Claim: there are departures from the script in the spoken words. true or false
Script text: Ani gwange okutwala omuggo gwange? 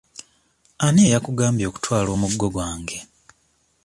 true